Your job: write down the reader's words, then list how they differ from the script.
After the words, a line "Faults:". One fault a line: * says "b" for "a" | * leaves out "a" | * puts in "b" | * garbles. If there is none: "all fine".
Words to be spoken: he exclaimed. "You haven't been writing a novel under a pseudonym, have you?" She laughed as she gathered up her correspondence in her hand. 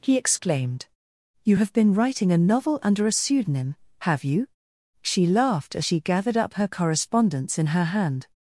he exclaimed. "You have been writing a novel under a pseudonym, have you?" She laughed as she gathered up her correspondence in her hand.
Faults:
* says "have" for "haven't"